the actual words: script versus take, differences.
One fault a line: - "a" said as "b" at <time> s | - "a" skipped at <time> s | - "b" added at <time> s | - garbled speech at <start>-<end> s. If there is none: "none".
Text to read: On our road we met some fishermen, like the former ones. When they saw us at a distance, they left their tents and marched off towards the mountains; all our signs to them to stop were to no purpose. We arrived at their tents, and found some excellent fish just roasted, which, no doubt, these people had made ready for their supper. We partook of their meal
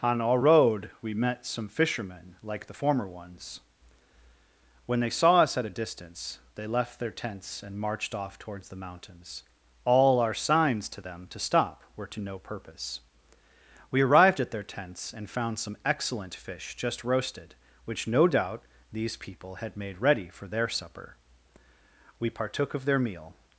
none